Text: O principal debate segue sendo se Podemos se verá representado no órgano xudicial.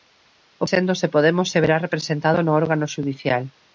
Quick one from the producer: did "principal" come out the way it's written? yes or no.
no